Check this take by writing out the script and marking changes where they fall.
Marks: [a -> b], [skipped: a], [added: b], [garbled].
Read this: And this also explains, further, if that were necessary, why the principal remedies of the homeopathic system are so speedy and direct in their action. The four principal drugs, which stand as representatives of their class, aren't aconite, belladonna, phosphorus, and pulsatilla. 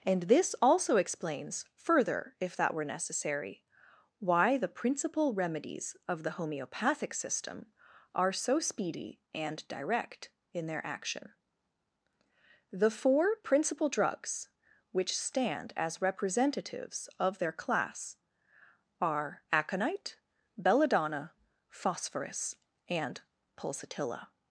And this also explains, further, if that were necessary, why the principal remedies of the homeopathic system are so speedy and direct in their action. The four principal drugs, which stand as representatives of their class, [aren't -> are] aconite, belladonna, phosphorus, and pulsatilla.